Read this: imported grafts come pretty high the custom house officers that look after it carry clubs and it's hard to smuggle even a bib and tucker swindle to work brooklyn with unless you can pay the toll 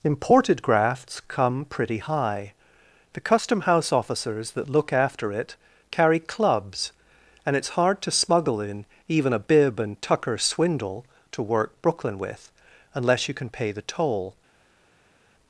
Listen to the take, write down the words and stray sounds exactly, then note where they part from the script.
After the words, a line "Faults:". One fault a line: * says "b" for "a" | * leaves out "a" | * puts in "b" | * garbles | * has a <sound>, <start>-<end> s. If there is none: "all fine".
imported grafts come pretty high the custom house officers that look after it carry clubs and it's hard to smuggle in even a bib and tucker swindle to work brooklyn with unless you can pay the toll
Faults:
* puts in "in"